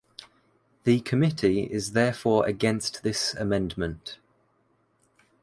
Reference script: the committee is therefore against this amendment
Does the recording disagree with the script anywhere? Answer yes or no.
no